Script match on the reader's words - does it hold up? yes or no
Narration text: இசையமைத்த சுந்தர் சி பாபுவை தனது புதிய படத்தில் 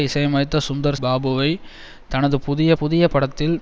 no